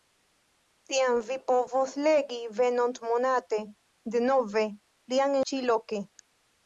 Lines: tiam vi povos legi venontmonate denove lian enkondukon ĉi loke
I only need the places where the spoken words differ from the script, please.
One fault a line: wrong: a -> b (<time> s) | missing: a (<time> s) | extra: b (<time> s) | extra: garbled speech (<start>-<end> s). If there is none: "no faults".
missing: enkondukon (5.4 s)